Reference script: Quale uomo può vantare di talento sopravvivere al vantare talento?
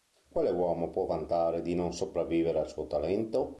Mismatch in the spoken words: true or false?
true